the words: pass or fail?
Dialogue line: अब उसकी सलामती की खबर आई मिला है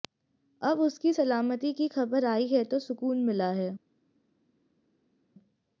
fail